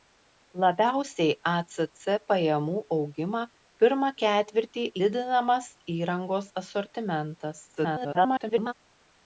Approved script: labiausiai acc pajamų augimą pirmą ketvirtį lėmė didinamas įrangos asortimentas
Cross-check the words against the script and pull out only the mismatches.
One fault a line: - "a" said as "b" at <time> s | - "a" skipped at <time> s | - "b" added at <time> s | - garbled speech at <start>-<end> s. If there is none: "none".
- "lėmė" skipped at 4.9 s
- garbled speech at 7.8-8.7 s